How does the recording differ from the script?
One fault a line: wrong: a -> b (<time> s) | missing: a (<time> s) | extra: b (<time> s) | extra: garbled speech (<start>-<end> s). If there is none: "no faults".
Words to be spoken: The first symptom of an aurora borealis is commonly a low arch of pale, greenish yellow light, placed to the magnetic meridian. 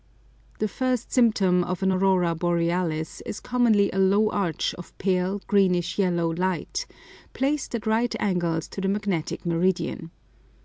extra: at right angles (7.7 s)